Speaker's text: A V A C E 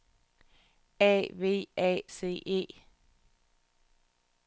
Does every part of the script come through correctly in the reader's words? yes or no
yes